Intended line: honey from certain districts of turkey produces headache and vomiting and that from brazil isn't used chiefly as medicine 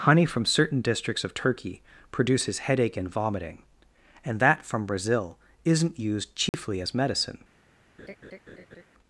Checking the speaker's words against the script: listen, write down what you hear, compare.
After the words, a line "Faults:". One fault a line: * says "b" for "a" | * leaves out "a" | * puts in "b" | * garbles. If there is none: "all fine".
honey from certain districts of turkey produces headache and vomiting and that from brazil isn't used chiefly as medicine
Faults:
all fine